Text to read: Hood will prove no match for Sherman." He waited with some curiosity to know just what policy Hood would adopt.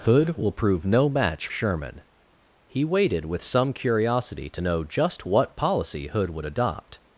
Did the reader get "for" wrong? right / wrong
wrong